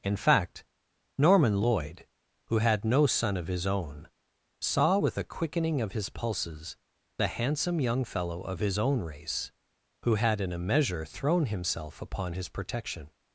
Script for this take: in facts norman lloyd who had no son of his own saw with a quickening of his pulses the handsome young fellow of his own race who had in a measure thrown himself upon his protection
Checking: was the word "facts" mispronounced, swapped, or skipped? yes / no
yes